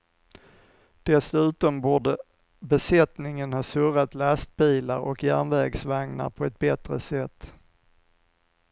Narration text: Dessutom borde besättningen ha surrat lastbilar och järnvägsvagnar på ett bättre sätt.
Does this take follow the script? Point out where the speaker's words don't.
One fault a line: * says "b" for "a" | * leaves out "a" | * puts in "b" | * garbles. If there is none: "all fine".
all fine